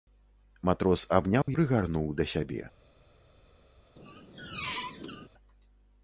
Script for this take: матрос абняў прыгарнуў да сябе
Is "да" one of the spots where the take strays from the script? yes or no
no